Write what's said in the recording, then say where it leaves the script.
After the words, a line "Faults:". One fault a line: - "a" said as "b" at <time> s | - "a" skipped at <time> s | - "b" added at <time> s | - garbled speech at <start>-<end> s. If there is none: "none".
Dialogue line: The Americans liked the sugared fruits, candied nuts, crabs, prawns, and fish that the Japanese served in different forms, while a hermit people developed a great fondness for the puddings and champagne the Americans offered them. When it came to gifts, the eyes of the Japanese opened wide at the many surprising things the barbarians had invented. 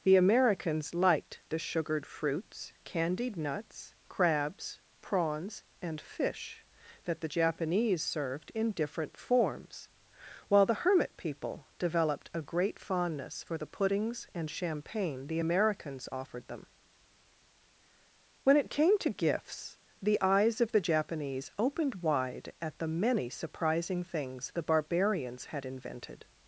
The Americans liked the sugared fruits, candied nuts, crabs, prawns, and fish that the Japanese served in different forms, while the hermit people developed a great fondness for the puddings and champagne the Americans offered them. When it came to gifts, the eyes of the Japanese opened wide at the many surprising things the barbarians had invented.
Faults:
- "a" said as "the" at 10.7 s